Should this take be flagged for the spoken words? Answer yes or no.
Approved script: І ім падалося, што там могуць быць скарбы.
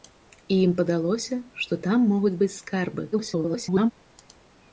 yes